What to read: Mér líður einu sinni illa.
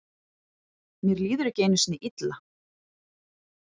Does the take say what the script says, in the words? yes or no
no